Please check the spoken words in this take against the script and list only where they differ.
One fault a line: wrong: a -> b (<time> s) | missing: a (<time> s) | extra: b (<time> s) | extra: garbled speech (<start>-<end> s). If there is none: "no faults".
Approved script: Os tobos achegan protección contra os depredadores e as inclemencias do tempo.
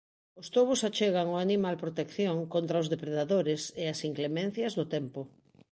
extra: ao animal (1.3 s)